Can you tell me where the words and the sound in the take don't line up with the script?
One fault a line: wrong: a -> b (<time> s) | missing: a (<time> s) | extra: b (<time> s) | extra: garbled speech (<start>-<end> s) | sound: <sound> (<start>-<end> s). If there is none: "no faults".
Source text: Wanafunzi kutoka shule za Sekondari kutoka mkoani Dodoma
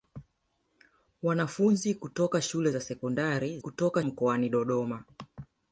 no faults